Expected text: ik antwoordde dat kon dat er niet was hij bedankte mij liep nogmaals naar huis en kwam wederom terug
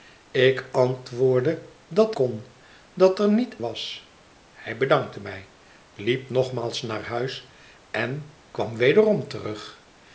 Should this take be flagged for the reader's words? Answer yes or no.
no